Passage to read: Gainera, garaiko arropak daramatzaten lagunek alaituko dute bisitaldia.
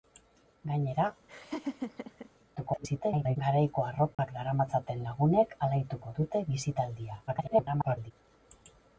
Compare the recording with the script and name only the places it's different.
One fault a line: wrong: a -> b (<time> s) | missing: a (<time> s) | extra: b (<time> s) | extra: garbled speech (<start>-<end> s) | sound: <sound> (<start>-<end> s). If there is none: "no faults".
sound: laugh (1.3-2.3 s)
extra: garbled speech (2.6-3.4 s)
sound: dropout (4.1-4.2 s)
extra: garbled speech (7.3-8.1 s)